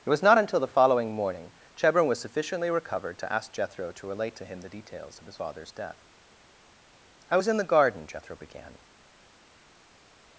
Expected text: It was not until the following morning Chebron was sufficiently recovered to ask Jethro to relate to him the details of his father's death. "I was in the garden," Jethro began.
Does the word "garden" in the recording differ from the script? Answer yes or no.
no